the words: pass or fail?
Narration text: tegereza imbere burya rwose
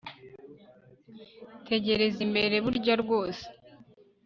pass